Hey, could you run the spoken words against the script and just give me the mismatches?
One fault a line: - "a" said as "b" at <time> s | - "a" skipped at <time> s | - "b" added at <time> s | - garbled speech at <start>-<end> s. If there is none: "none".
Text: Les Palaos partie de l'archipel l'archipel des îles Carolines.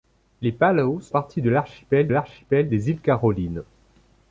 none